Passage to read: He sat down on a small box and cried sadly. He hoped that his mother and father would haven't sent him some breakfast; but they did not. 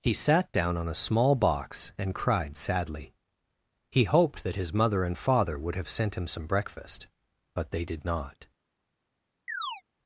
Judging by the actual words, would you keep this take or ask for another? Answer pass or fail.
fail